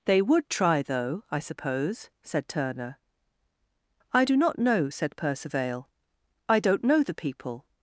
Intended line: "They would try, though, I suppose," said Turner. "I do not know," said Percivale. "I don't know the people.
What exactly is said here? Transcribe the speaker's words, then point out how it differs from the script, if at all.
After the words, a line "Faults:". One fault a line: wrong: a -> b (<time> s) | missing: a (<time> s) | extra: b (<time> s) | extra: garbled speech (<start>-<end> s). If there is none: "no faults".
"They would try, though, I suppose," said Turner. "I do not know," said Percivale. "I don't know the people.
Faults:
no faults